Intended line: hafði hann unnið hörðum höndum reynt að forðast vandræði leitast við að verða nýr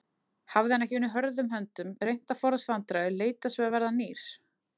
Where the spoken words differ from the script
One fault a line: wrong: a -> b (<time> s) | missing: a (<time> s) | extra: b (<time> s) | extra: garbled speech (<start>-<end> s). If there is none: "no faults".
extra: ekki (0.8 s)